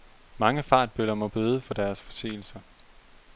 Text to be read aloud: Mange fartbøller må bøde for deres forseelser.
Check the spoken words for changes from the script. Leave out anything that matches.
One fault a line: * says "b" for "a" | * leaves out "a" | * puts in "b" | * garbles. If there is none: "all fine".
all fine